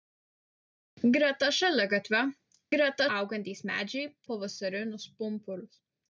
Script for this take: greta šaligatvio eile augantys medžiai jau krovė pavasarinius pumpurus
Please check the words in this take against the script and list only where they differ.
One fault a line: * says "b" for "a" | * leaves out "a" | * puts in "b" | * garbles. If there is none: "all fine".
* says "greta" for "eile"
* leaves out "jau krovė"